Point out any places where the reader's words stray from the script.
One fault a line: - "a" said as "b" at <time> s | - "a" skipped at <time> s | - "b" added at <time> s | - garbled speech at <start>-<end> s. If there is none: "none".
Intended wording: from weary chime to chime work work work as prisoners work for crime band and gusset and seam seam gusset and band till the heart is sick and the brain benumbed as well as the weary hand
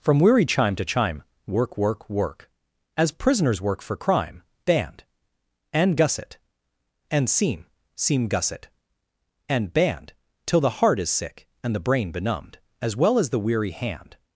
none